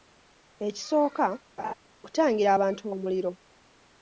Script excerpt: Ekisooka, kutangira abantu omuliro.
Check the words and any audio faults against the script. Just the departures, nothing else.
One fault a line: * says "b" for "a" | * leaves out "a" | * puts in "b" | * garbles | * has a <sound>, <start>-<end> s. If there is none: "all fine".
* has a laugh, 1.6-1.7 s